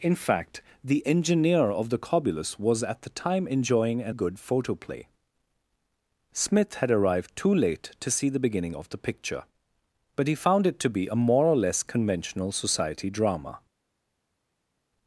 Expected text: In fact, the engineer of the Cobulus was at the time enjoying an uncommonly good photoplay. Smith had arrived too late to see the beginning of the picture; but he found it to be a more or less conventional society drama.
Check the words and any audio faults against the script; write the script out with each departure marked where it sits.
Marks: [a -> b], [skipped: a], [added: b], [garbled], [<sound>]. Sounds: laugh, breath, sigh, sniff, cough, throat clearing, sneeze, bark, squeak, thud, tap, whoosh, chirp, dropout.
In fact, the engineer of the Cobulus was at the time enjoying an [skipped: uncommonly] good photoplay. Smith had arrived too late to see the beginning of the picture; but he found it to be a more or less conventional society drama.